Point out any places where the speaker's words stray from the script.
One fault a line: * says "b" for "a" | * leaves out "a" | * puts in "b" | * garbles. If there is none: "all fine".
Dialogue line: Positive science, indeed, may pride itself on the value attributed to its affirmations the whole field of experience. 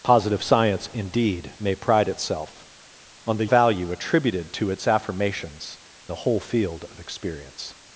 all fine